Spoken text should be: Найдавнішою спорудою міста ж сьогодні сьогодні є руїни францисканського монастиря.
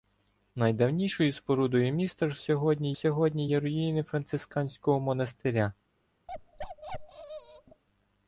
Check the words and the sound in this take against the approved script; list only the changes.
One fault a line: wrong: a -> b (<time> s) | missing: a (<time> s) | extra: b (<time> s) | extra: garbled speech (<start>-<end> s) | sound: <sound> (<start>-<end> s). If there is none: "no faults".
sound: bark (6.3-7.8 s)